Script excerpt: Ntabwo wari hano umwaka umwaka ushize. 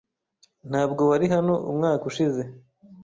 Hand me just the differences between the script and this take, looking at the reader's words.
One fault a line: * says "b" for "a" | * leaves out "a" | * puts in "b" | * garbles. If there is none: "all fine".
* leaves out "umwaka"